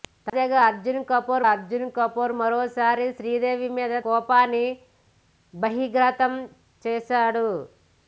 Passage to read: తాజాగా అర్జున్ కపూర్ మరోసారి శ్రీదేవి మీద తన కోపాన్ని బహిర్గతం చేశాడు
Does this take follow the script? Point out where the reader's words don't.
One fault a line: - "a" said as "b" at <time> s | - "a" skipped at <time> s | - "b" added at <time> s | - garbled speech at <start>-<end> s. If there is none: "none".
- "అర్జున్ కపూర్" added at 1.5 s
- "తన" skipped at 3.9 s